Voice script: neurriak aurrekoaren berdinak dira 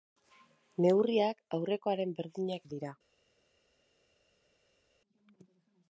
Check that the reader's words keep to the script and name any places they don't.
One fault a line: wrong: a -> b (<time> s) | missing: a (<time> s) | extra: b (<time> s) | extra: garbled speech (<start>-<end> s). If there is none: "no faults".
no faults